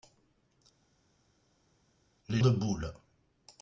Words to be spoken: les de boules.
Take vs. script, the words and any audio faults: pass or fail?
pass